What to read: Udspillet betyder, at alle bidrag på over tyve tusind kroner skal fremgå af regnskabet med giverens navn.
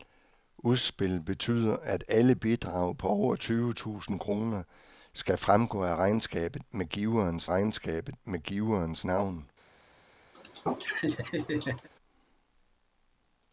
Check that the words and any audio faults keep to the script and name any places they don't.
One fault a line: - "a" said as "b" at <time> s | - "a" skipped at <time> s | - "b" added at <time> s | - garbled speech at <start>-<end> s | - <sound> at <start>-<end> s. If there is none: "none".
- "regnskabet med giverens" added at 7.5 s
- laugh at 10.3-11.9 s